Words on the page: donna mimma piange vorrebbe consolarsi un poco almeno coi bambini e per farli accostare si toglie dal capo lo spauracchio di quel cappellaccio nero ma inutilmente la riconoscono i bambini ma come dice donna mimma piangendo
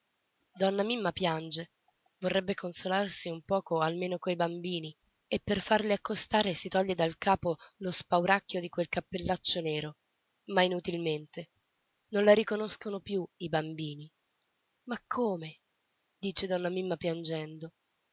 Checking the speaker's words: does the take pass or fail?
fail